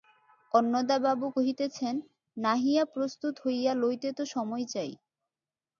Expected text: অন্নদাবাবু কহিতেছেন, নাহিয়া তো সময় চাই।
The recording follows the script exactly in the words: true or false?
false